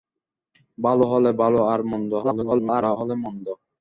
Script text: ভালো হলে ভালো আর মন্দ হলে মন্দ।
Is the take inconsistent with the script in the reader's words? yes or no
yes